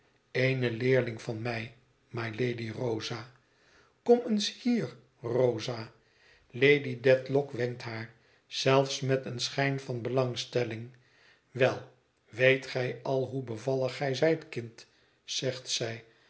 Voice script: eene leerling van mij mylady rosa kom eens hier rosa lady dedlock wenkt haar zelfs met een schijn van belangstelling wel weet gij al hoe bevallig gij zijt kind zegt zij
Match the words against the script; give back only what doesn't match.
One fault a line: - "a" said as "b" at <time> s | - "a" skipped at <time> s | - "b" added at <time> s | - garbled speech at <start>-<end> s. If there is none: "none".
none